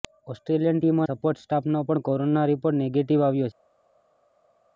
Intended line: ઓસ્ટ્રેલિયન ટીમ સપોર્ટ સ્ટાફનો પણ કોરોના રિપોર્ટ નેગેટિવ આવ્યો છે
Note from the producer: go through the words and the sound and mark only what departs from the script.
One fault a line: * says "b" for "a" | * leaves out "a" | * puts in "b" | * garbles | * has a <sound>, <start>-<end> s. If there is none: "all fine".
all fine